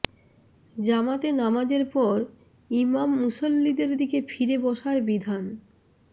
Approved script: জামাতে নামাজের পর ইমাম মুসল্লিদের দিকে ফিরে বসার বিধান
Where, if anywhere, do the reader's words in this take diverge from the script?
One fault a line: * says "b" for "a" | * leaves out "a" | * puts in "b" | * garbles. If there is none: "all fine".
all fine